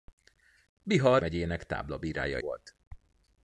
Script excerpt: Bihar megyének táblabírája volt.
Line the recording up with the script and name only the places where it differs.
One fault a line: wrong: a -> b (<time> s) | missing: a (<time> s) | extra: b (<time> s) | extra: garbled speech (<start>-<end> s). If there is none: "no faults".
no faults